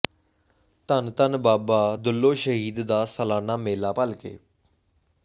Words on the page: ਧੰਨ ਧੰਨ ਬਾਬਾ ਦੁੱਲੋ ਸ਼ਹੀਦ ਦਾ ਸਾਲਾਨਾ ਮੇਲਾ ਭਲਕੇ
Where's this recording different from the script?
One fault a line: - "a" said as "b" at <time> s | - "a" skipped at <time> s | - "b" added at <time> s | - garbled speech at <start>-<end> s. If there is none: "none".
none